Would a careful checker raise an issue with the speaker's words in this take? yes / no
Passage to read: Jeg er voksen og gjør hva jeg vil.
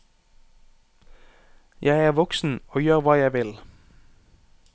no